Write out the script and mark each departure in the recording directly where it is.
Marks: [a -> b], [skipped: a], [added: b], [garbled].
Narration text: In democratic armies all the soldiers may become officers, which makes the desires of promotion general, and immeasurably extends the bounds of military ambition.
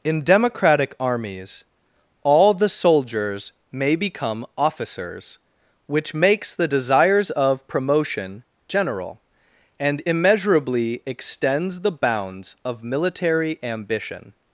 In democratic armies all the soldiers may become officers, which makes the desires of promotion general, and immeasurably extends the bounds of military ambition.